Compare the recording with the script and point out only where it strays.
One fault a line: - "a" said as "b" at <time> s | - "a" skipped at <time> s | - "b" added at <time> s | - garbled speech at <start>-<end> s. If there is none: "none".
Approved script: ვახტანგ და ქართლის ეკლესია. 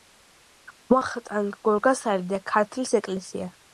- "გორგასალი" added at 1.7 s